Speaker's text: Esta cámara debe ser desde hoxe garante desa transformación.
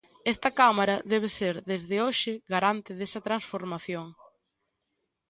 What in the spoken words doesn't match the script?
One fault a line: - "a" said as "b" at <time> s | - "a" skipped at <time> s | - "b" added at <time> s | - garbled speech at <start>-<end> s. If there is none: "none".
none